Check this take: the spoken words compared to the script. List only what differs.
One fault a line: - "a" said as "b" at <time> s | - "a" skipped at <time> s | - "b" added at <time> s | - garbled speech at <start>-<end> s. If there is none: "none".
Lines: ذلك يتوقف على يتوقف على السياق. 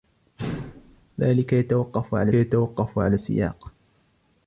none